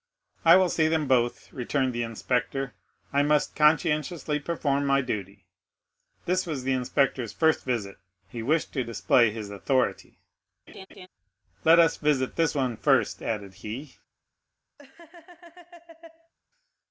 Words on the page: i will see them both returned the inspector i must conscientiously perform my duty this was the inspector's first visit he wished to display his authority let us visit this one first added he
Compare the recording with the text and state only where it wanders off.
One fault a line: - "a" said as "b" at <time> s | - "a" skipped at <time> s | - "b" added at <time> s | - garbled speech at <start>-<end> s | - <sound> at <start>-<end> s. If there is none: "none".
- laugh at 10.7-11.1 s
- laugh at 14.8-16.3 s